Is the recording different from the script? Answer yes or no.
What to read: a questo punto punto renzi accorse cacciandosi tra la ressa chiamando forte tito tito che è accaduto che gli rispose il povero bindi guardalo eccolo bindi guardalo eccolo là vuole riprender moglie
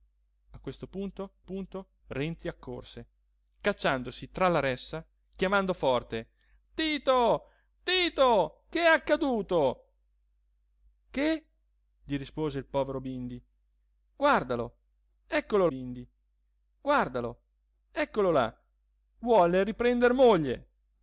no